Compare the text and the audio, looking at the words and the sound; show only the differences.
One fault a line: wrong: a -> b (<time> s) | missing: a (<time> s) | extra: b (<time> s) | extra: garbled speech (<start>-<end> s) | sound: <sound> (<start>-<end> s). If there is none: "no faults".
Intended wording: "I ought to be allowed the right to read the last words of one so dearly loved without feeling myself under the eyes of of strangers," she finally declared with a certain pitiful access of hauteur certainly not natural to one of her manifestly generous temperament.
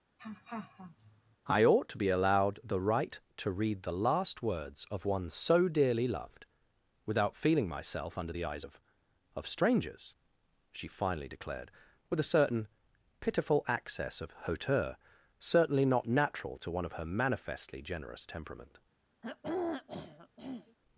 sound: laugh (0.2-1.4 s)
sound: throat clearing (19.2-20.8 s)